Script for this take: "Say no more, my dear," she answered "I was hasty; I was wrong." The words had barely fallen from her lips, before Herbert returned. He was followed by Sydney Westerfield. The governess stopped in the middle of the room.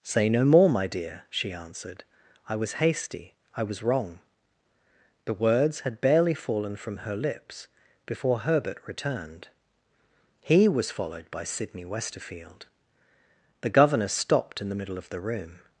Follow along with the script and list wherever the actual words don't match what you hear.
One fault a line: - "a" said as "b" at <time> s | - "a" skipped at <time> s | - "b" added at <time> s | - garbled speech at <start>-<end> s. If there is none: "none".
none